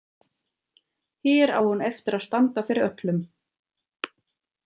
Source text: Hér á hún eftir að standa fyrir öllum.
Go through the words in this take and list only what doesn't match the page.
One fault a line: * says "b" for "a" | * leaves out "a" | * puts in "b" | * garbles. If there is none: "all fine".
all fine